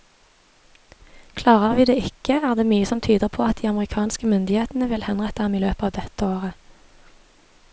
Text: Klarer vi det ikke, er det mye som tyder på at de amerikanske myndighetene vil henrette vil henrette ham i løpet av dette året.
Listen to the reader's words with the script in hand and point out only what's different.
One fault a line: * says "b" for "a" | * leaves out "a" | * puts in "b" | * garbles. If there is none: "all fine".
* leaves out "vil henrette"